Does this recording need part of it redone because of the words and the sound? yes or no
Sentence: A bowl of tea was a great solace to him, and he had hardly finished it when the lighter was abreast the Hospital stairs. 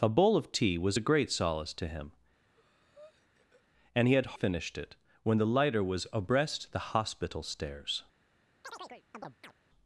yes